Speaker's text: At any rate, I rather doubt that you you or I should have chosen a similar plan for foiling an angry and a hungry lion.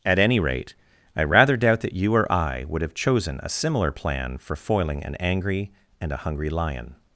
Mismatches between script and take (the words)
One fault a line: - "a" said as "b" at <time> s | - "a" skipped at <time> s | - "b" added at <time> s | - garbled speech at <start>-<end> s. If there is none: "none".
- "you" skipped at 2.1 s
- "should" said as "would" at 2.7 s